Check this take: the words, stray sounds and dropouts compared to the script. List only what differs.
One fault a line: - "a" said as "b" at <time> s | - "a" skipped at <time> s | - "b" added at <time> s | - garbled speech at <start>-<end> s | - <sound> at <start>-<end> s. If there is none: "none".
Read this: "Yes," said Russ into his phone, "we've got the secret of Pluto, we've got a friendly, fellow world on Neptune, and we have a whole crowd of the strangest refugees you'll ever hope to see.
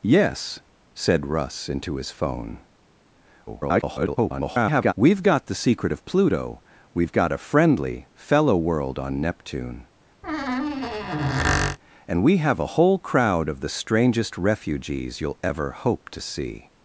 - garbled speech at 3.5-4.9 s
- squeak at 10.2-11.8 s